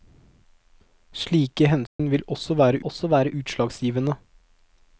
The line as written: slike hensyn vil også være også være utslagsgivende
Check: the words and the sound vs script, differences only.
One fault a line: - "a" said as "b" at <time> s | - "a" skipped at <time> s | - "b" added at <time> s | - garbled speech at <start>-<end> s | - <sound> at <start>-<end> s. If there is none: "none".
- dropout at 1.9-2.0 s